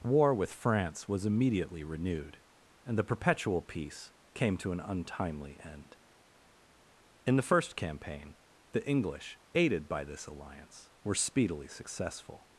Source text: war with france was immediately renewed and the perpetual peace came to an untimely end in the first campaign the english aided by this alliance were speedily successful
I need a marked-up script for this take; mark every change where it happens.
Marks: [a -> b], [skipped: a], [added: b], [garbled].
war with france was immediately renewed and the perpetual peace came to an untimely end in the first campaign the english aided by this alliance were speedily successful